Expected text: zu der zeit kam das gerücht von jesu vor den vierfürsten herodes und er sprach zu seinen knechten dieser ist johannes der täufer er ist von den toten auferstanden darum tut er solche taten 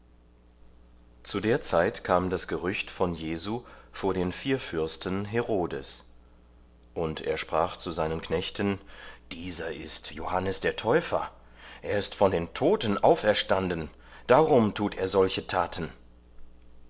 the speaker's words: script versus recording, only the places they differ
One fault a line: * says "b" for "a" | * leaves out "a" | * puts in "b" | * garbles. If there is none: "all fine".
all fine